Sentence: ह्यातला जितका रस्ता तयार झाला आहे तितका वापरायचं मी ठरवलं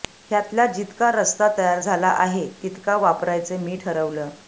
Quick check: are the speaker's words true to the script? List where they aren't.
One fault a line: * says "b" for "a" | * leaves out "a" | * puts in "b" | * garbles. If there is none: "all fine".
all fine